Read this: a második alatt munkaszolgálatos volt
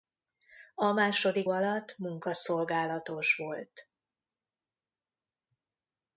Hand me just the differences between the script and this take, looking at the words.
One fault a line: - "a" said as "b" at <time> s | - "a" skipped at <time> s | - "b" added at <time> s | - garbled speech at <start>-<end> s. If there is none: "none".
none